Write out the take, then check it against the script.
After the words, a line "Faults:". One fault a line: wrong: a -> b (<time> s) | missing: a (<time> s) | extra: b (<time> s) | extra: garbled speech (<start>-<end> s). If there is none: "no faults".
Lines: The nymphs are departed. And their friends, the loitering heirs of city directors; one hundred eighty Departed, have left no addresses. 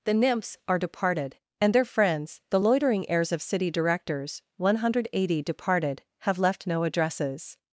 The nymphs are departed. And their friends, the loitering heirs of city directors; one hundred eighty Departed, have left no addresses.
Faults:
no faults